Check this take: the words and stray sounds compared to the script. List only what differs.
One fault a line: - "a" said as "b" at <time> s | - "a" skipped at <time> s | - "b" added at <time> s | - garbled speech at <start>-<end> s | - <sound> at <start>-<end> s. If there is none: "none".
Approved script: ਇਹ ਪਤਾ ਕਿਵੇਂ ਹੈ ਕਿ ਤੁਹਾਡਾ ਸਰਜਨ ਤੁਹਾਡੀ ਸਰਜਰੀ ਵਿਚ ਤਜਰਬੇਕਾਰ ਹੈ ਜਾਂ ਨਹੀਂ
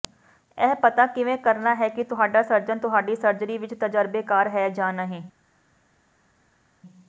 - "ਕਰਨਾ" added at 1.4 s